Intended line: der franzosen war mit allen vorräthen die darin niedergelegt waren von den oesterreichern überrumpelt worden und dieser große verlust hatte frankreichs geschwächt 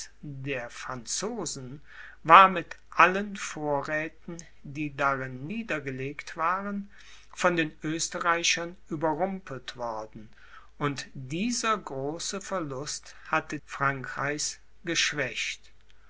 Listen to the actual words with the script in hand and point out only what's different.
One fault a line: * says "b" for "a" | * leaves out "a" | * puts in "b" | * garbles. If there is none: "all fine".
all fine